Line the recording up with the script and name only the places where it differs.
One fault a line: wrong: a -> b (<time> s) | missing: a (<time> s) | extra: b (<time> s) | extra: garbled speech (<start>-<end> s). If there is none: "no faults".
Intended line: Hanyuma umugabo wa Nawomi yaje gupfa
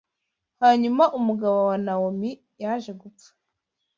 no faults